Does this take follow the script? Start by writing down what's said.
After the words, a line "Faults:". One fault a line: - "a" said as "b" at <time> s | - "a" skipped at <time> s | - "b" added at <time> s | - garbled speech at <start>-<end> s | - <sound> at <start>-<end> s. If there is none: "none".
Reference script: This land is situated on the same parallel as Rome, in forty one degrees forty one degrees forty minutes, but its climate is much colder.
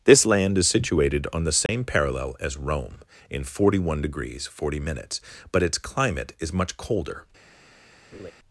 This land is situated on the same parallel as Rome, in forty one degrees forty minutes, but its climate is much colder.
Faults:
- dropout at 1.7-1.7 s
- "one degrees forty" skipped at 4.8 s
- laugh at 8.1-8.3 s